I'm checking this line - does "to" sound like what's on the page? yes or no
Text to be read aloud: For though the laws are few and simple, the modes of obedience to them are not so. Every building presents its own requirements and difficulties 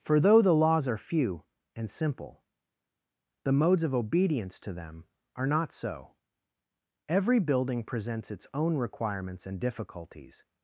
yes